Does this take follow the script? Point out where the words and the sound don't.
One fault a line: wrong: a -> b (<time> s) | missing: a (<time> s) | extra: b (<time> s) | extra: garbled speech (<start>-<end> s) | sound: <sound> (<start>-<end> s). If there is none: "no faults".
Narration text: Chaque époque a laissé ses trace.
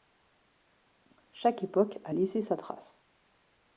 wrong: ses -> sa (2.4 s)